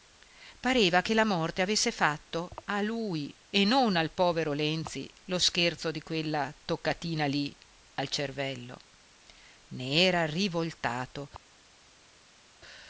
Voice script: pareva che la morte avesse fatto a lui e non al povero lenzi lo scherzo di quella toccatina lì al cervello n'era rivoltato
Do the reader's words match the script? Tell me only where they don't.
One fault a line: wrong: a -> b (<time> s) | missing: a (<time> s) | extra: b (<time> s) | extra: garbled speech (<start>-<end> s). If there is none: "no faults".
no faults